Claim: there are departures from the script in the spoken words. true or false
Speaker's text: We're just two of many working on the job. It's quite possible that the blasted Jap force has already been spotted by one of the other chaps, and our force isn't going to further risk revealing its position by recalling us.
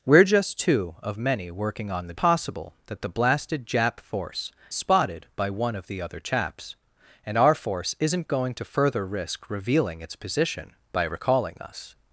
true